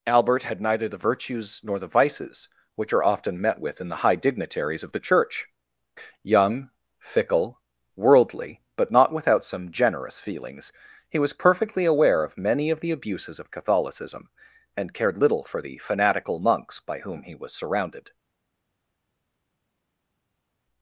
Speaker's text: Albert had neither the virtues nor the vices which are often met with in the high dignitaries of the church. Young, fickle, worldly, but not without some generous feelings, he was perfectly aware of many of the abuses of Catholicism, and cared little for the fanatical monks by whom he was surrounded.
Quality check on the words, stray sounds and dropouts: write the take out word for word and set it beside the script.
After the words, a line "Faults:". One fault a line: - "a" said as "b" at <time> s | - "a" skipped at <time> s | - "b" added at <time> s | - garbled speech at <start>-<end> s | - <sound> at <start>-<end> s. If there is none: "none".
Albert had neither the virtues nor the vices which are often met with in the high dignitaries of the church. Young, fickle, worldly, but not without some generous feelings, he was perfectly aware of many of the abuses of Catholicism, and cared little for the fanatical monks by whom he was surrounded.
Faults:
none